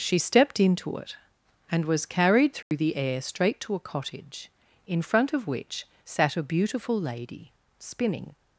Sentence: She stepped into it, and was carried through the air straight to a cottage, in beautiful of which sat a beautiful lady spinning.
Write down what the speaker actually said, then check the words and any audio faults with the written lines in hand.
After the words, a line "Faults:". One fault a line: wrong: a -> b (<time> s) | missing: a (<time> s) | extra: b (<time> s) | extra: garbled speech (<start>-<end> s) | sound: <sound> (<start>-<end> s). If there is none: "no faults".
She stepped into it, and was carried through the air straight to a cottage, in front of which sat a beautiful lady spinning.
Faults:
sound: dropout (2.6-2.7 s)
wrong: beautiful -> front (5.0 s)